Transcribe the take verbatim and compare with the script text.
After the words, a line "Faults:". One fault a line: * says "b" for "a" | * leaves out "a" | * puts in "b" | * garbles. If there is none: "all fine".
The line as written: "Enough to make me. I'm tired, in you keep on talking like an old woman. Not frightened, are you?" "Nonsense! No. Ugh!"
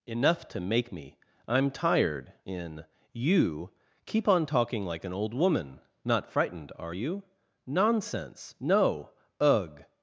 "Enough to make me. I'm tired, in you keep on talking like an old woman. Not frightened, are you?" "Nonsense! No. Ugh!"
Faults:
all fine